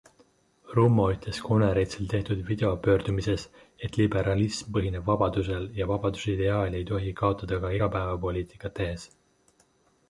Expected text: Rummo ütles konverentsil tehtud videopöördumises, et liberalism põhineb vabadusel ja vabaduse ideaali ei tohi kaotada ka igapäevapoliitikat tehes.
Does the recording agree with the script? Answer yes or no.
yes